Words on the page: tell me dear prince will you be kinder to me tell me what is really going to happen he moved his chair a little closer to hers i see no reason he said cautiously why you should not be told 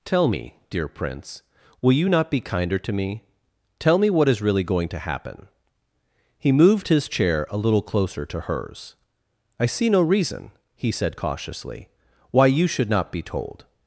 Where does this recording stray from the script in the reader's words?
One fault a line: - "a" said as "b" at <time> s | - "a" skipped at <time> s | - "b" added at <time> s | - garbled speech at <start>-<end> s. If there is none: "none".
- "not" added at 2.1 s